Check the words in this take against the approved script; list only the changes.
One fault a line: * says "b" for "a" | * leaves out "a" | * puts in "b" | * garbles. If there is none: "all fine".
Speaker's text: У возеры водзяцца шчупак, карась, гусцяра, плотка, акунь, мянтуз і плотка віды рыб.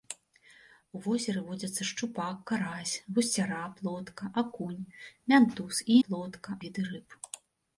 all fine